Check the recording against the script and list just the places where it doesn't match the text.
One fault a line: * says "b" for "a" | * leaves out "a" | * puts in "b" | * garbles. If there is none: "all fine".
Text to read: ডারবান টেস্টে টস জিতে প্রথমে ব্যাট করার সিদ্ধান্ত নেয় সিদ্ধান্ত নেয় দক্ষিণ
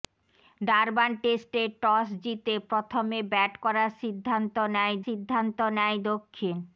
all fine